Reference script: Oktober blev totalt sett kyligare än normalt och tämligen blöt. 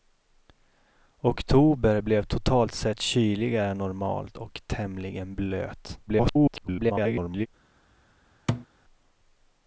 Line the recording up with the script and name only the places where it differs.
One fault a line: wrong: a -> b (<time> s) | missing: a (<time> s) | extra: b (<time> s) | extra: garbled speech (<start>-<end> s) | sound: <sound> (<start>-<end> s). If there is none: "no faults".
extra: garbled speech (6.1-7.5 s)
sound: thud (8.5-8.7 s)